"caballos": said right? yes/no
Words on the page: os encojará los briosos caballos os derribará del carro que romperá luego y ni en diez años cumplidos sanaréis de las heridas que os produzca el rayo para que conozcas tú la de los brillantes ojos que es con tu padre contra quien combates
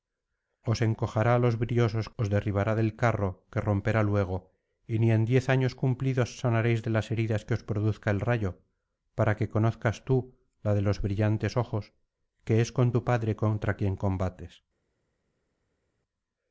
no